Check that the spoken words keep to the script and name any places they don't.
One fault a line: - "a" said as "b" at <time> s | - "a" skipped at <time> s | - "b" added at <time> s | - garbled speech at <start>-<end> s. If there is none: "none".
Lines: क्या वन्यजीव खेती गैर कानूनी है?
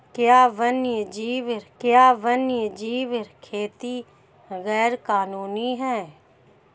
- "क्या वन्यजीव" added at 1.8 s